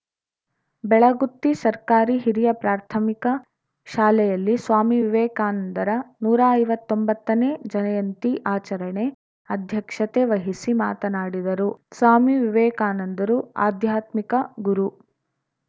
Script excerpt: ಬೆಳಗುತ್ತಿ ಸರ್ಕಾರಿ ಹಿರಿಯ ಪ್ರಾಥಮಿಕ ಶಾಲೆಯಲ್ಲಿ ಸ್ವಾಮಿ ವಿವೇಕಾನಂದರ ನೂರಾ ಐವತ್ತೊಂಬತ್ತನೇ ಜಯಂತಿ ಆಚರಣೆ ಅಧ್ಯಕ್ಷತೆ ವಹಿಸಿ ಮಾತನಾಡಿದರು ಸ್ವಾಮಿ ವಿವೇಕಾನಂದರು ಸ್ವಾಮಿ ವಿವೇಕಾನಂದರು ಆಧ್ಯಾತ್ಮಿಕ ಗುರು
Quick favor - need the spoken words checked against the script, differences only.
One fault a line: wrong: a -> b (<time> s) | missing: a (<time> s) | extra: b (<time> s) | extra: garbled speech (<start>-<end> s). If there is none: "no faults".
missing: ಸ್ವಾಮಿ ವಿವೇಕಾನಂದರು (13.4 s)